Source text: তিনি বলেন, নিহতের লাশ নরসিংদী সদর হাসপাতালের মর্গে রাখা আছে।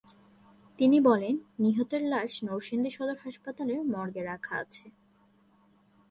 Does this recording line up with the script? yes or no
yes